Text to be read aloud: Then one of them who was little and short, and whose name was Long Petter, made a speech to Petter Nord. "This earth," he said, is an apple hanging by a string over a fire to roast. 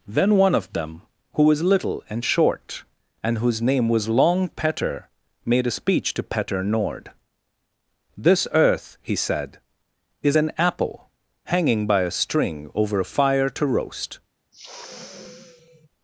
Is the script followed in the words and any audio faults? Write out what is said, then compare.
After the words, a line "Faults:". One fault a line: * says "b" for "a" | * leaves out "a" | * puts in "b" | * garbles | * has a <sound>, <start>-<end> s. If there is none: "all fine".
Then one of them who was little and short, and whose name was Long Petter, made a speech to Petter Nord. "This earth," he said, is an apple hanging by a string over a fire to roast.
Faults:
* has a sniff, 14.5-15.9 s